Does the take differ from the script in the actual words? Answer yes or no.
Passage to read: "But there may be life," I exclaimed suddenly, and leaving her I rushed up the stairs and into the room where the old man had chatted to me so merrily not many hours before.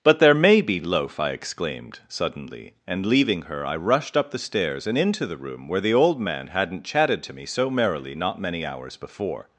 yes